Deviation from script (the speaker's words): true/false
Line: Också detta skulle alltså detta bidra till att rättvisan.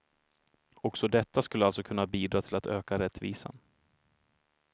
true